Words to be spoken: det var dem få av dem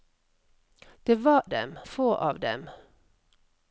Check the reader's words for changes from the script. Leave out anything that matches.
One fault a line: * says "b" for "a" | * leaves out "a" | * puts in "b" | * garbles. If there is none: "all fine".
all fine